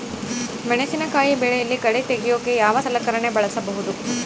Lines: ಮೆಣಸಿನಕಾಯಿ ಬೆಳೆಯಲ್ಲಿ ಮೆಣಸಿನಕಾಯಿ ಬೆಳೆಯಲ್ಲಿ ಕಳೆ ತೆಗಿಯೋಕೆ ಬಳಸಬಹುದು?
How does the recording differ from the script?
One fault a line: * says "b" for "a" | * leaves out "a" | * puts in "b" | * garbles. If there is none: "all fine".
* says "ಕಳೆ ತೆಗಿಯೋಕೆ ಯಾವ ಸಲಕರಣೆ" for "ಮೆಣಸಿನಕಾಯಿ ಬೆಳೆಯಲ್ಲಿ ಕಳೆ ತೆಗಿಯೋಕೆ"